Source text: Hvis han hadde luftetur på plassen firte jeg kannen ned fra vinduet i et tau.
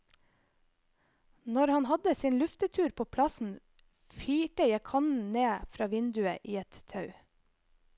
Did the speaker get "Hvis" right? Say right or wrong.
wrong